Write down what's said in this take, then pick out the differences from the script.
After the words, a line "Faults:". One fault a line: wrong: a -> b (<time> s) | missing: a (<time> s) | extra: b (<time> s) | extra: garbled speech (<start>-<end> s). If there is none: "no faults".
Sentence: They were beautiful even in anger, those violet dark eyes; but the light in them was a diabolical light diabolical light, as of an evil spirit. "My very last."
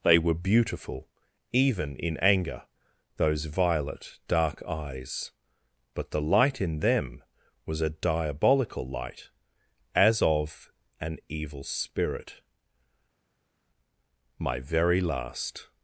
They were beautiful even in anger, those violet dark eyes; but the light in them was a diabolical light, as of an evil spirit. "My very last."
Faults:
missing: diabolical light (9.3 s)